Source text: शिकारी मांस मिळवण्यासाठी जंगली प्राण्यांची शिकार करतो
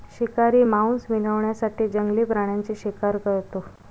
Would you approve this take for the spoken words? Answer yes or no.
yes